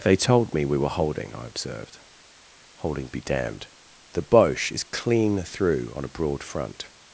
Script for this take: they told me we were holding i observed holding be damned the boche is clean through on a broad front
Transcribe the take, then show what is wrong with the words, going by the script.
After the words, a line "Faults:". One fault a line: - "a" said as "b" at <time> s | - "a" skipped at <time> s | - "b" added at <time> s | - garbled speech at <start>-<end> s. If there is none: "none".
they told me we were holding i observed holding be damned the boche is clean through on a broad front
Faults:
none